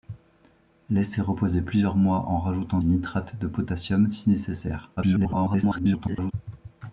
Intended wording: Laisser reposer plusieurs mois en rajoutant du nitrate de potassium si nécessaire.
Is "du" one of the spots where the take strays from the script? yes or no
yes